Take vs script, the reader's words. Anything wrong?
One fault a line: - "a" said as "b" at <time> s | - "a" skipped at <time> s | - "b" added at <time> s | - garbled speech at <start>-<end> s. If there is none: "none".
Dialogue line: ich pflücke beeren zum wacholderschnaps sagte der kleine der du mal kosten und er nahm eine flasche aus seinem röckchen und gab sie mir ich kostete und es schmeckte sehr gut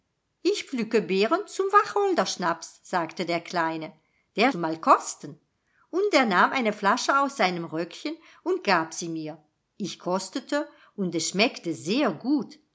none